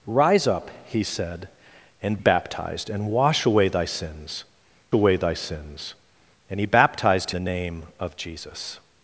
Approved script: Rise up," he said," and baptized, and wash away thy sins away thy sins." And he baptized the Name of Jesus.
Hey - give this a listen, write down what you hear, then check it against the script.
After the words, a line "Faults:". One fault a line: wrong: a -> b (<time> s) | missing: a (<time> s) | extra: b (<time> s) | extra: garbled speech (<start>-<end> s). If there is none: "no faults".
Rise up," he said," and baptized, and wash away thy sins away thy sins." And he baptized the Name of Jesus.
Faults:
no faults